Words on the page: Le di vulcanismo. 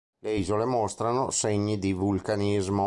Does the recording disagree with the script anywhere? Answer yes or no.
yes